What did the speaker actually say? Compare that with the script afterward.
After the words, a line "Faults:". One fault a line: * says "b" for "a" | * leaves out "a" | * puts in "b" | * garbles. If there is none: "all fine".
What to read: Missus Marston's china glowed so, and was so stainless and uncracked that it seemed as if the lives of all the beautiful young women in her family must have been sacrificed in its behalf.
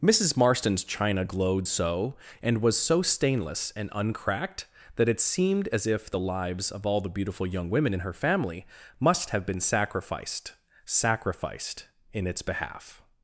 Missus Marston's china glowed so, and was so stainless and uncracked that it seemed as if the lives of all the beautiful young women in her family must have been sacrificed sacrificed in its behalf.
Faults:
* puts in "sacrificed"